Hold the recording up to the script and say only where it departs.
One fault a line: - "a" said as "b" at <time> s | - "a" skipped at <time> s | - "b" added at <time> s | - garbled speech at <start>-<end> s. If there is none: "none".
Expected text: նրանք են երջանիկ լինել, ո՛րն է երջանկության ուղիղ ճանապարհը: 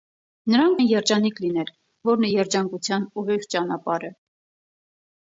none